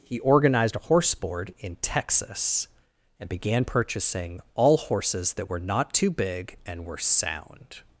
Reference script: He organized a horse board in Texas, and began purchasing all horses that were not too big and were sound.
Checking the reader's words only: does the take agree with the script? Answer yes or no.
yes